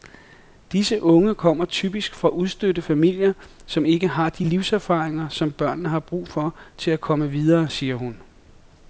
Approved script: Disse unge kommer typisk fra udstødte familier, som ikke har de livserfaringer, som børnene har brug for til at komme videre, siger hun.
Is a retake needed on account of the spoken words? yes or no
no